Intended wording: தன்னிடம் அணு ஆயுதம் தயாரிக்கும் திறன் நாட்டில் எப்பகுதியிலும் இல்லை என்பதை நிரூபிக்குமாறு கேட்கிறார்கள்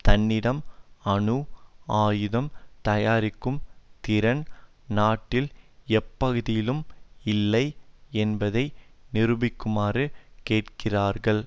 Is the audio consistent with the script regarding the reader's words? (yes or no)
yes